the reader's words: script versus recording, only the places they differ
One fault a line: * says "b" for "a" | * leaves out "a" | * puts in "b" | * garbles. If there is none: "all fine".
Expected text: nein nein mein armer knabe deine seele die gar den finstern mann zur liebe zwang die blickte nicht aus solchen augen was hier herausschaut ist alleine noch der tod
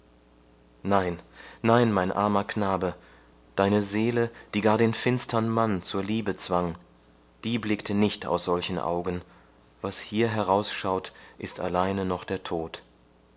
all fine